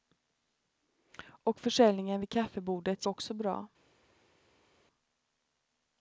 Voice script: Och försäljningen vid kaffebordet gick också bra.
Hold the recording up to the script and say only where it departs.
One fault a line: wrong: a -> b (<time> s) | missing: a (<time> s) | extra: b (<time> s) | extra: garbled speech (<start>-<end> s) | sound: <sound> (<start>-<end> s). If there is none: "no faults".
missing: gick (3.0 s)